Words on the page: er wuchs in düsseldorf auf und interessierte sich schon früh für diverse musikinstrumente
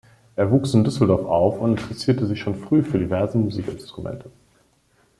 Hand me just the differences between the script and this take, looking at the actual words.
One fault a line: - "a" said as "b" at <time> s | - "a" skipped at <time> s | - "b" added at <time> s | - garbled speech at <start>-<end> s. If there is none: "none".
none